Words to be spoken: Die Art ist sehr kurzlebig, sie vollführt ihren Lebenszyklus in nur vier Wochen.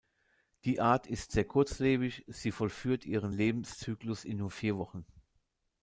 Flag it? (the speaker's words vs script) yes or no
no